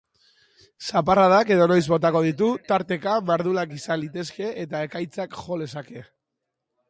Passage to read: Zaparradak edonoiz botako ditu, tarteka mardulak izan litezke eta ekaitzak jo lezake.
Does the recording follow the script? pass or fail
pass